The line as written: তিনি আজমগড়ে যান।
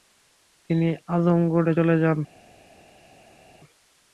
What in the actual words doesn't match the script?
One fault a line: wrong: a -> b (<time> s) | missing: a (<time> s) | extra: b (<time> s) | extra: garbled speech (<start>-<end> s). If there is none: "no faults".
extra: চলে (1.8 s)